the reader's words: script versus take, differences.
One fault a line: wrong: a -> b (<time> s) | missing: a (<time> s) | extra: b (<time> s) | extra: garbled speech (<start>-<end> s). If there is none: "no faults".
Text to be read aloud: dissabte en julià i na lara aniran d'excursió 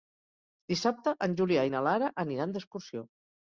no faults